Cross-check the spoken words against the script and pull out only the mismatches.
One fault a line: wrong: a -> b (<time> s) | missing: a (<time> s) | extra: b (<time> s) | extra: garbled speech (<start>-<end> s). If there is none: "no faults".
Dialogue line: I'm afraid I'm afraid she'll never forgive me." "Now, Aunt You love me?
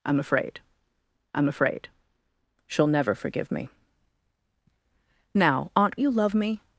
no faults